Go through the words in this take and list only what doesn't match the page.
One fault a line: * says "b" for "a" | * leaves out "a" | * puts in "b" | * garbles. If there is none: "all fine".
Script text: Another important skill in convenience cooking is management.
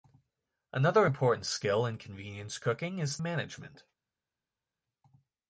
all fine